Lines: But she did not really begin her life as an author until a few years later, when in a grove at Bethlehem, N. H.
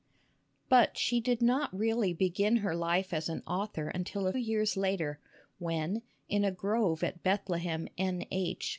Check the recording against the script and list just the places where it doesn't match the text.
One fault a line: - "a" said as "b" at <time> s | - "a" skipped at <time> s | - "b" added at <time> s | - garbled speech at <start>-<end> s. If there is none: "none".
- "few" skipped at 4.3 s